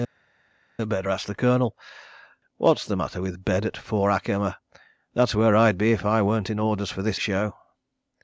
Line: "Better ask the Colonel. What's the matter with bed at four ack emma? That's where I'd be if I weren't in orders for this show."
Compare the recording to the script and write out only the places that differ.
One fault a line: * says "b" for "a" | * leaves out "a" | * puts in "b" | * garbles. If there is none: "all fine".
all fine